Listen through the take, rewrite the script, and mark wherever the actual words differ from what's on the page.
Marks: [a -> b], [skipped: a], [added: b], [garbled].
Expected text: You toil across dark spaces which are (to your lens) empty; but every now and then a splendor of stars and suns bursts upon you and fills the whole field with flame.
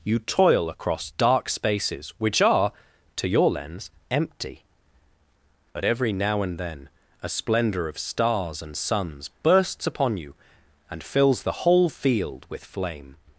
You toil across dark spaces which are (to your lens) empty; but every now and then a splendor of stars and suns bursts upon you and fills the whole field with flame.